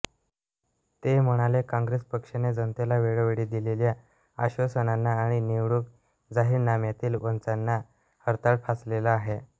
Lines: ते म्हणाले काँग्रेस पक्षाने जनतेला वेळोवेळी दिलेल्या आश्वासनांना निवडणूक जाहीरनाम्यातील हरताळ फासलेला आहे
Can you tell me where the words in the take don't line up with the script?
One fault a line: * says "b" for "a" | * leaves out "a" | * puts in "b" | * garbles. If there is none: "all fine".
* puts in "आणि"
* puts in "वचनांना"